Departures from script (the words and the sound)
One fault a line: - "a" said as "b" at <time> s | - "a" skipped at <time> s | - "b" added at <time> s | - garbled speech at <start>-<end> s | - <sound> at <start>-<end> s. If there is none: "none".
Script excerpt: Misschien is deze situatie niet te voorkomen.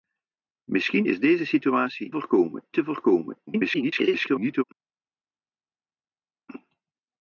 - "niet" said as "voorkomen" at 2.1 s
- garbled speech at 3.5-4.6 s